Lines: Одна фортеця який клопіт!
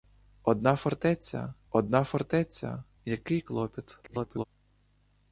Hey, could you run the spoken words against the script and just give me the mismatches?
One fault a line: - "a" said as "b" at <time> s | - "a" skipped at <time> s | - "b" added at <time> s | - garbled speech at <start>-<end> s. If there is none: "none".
- "одна фортеця" added at 1.7 s
- garbled speech at 4.0-4.4 s